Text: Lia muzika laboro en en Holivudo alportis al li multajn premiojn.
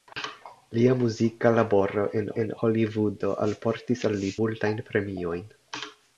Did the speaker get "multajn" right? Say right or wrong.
right